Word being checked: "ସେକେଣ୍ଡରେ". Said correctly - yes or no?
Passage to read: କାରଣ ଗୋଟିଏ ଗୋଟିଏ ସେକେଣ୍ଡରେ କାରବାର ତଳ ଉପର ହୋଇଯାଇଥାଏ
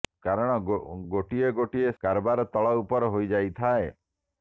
no